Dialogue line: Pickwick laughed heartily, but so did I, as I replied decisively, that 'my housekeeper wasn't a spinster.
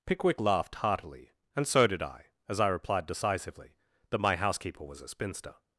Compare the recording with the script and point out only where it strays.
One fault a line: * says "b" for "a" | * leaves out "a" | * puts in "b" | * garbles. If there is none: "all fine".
* says "and" for "but"
* says "was" for "wasn't"